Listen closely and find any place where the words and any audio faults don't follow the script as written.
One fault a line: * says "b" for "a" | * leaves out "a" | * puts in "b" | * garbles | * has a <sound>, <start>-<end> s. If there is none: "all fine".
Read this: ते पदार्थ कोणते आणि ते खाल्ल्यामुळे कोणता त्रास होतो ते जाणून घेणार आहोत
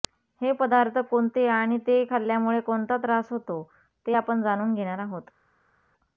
* says "हे" for "ते"
* puts in "आपण"